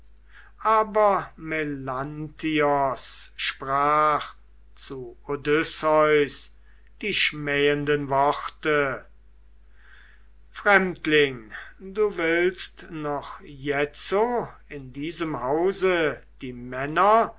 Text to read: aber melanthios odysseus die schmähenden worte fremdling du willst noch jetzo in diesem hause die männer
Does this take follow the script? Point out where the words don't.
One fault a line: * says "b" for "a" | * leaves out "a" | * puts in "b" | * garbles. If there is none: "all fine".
* puts in "sprach zu"